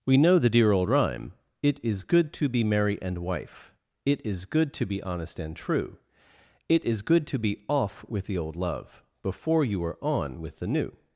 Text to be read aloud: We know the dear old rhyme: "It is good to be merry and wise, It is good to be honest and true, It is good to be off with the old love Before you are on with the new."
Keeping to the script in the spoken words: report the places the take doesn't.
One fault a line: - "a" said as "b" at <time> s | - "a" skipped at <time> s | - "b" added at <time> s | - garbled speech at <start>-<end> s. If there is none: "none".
- "wise" said as "wife" at 3.2 s